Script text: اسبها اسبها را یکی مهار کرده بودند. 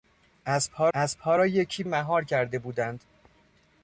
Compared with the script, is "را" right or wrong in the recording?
right